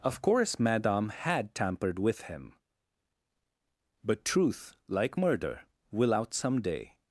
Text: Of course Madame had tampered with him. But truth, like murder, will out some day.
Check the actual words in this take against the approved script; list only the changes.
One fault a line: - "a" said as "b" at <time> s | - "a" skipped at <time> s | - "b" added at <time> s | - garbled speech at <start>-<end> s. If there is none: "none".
none